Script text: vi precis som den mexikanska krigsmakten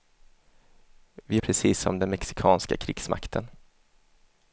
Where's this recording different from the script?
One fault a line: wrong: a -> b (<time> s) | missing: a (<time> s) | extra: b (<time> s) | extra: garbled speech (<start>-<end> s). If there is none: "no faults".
no faults